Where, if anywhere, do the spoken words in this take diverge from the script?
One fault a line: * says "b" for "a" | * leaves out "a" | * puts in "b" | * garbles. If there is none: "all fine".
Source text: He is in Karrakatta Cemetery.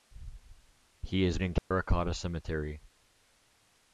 all fine